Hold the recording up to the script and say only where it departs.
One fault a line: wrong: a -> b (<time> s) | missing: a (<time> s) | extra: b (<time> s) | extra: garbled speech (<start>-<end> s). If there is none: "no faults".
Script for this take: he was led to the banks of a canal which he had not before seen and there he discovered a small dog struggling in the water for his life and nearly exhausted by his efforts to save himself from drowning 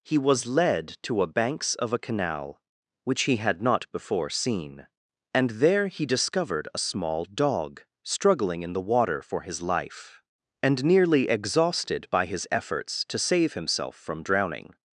wrong: the -> a (1.2 s)